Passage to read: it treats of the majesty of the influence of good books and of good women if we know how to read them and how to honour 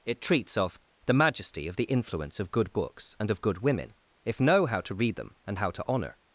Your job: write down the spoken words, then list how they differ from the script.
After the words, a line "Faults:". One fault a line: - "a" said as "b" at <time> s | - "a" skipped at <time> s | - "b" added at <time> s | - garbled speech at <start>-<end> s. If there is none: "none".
it treats of the majesty of the influence of good books and of good women if know how to read them and how to honour
Faults:
- "we" skipped at 4.4 s